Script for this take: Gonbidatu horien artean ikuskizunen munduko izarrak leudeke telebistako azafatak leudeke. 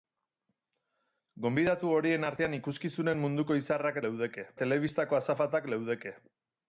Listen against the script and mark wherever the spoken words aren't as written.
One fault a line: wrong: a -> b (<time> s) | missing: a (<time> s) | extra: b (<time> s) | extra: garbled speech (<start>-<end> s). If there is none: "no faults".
no faults